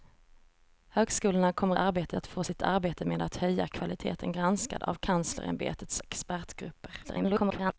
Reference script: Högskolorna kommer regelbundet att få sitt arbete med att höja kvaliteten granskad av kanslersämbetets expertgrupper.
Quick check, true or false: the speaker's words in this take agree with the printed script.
false